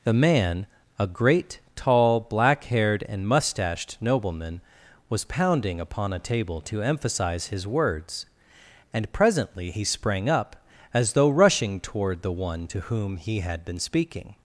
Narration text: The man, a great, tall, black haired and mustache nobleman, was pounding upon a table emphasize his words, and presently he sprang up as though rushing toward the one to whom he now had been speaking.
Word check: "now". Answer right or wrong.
wrong